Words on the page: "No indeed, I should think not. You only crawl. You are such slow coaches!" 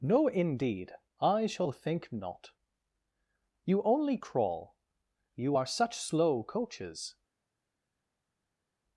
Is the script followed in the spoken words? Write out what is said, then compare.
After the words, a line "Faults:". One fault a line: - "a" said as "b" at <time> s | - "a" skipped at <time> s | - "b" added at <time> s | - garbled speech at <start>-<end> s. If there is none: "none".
"No indeed, I shall think not. You only crawl. You are such slow coaches!"
Faults:
- "should" said as "shall" at 1.4 s